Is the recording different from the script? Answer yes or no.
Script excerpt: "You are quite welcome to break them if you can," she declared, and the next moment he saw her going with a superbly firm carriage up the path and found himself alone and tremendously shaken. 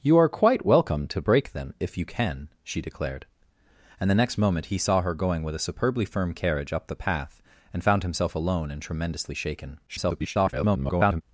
yes